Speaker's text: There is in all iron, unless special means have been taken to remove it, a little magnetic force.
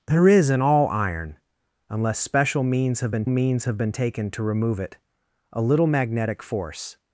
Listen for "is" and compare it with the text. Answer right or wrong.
right